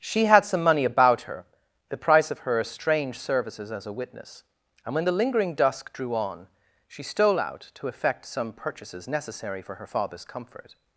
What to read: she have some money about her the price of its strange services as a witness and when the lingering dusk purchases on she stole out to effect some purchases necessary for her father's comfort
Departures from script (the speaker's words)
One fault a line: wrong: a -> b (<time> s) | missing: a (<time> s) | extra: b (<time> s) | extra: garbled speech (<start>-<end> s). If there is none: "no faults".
wrong: have -> had (0.2 s)
wrong: its -> her (2.4 s)
wrong: purchases -> drew (5.9 s)